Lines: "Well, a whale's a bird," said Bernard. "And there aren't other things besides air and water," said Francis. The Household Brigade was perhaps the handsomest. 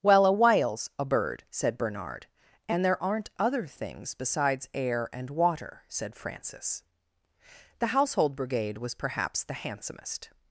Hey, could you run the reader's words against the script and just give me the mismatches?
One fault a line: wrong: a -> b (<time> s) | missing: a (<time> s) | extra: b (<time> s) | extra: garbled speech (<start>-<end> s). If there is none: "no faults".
no faults